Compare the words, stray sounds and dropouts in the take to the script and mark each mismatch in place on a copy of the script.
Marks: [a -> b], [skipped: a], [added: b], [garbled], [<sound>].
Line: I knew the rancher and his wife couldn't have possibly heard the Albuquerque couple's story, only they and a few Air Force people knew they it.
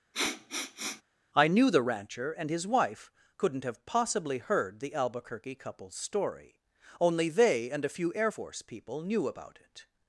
[sniff] I knew the rancher and his wife couldn't have possibly heard the Albuquerque couple's story, only they and a few Air Force people knew [they -> about] it.